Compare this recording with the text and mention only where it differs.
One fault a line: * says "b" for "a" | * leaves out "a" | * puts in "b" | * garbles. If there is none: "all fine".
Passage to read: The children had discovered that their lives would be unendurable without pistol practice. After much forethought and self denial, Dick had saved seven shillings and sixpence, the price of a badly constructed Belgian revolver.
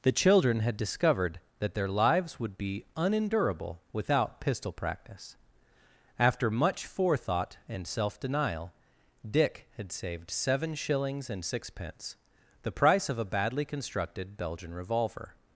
all fine